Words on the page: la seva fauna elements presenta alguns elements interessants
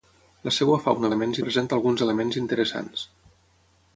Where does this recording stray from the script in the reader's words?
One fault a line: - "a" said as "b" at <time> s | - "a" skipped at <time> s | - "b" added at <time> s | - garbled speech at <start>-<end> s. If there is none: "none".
none